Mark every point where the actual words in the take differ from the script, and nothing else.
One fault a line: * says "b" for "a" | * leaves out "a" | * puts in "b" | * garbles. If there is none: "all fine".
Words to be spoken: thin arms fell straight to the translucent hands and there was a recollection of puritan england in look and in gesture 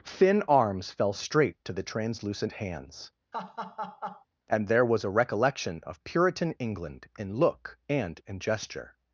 all fine